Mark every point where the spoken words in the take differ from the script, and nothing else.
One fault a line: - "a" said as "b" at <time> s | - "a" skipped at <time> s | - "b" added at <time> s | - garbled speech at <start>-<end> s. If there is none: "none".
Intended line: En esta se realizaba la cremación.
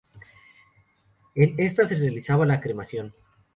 none